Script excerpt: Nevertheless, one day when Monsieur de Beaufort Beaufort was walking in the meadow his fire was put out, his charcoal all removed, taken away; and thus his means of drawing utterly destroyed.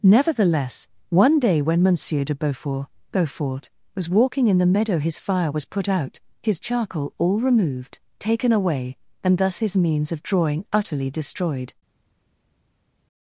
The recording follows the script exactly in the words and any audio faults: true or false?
true